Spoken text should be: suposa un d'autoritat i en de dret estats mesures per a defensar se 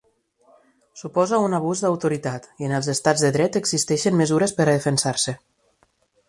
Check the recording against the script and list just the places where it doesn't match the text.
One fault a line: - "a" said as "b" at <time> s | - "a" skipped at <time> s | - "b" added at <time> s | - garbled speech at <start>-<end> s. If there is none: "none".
- "abús" added at 1.6 s
- "els estats" added at 2.8 s
- "estats" said as "existeixen" at 3.6 s